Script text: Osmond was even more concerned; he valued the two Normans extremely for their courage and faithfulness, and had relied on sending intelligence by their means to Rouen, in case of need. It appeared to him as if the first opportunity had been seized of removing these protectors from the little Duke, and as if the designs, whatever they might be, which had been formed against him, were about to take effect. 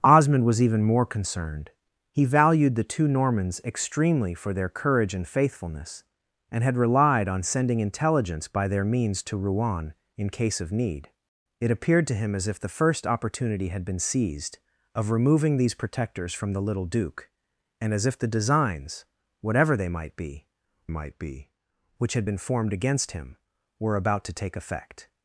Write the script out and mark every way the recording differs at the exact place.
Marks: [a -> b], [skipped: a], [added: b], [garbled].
Osmond was even more concerned; he valued the two Normans extremely for their courage and faithfulness, and had relied on sending intelligence by their means to Rouen, in case of need. It appeared to him as if the first opportunity had been seized of removing these protectors from the little Duke, and as if the designs, whatever they might be, [added: might be] which had been formed against him, were about to take effect.